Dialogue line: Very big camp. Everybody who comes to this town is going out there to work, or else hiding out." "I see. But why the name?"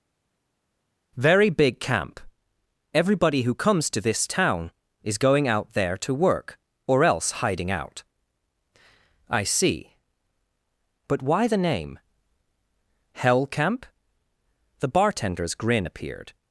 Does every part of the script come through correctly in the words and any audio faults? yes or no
no